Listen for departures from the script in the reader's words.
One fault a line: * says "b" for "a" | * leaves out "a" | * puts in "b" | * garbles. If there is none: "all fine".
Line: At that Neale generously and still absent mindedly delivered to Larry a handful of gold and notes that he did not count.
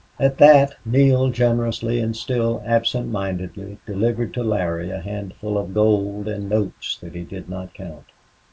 all fine